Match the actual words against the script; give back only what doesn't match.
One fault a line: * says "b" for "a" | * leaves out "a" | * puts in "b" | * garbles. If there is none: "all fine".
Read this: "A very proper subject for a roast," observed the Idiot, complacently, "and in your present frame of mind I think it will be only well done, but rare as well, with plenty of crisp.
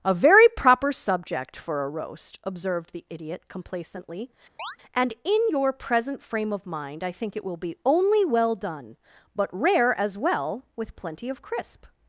all fine